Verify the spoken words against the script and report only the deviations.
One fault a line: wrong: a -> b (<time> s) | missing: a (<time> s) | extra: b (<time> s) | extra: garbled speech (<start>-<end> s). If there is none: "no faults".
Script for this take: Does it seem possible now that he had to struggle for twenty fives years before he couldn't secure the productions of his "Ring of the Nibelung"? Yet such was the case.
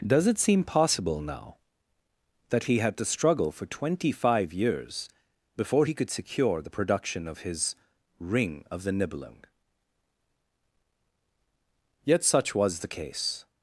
wrong: fives -> five (4.1 s)
wrong: couldn't -> could (5.9 s)
wrong: productions -> production (6.7 s)